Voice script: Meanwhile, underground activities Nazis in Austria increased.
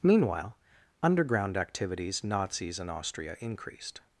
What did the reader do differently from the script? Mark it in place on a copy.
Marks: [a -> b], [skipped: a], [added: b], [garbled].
Meanwhile, underground activities Nazis in Austria increased.